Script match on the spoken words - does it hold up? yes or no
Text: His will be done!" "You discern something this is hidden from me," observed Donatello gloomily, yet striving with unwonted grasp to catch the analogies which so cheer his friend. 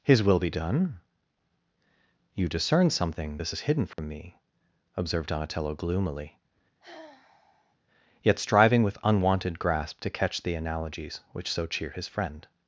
yes